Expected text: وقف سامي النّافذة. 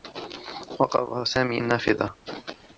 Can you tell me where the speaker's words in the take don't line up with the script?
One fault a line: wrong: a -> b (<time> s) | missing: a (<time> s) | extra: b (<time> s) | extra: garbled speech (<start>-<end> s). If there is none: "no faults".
no faults